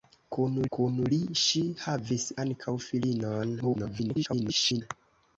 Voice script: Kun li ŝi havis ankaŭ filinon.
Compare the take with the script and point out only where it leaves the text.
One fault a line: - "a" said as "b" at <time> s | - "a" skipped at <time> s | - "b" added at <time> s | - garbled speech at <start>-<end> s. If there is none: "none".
- "kun" added at 0.8 s
- garbled speech at 3.6-4.8 s